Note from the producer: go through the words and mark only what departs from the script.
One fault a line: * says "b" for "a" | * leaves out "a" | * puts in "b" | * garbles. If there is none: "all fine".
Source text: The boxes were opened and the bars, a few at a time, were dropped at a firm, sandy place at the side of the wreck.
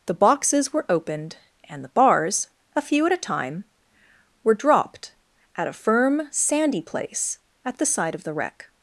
all fine